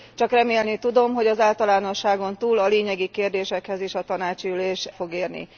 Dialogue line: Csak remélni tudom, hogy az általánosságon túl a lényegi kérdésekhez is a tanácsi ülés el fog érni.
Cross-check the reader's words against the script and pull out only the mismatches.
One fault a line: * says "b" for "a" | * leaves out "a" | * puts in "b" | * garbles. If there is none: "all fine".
* leaves out "el"